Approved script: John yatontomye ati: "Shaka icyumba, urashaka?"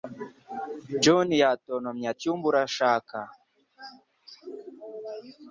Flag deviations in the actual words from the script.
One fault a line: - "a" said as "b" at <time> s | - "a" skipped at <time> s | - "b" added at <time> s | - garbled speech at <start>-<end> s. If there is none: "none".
- "ati Shaka" skipped at 2.1 s